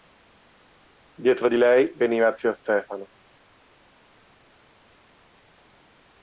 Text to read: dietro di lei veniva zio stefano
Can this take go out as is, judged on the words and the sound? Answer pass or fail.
pass